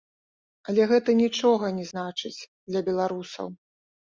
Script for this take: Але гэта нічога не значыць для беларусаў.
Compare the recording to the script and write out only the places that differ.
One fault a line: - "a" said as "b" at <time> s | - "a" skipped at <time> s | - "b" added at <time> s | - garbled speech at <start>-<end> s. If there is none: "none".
none